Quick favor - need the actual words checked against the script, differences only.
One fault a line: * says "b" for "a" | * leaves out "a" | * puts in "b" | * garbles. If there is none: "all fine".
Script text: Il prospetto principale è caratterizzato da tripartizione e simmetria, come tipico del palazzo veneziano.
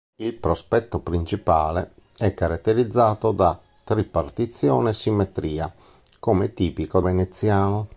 * leaves out "del palazzo"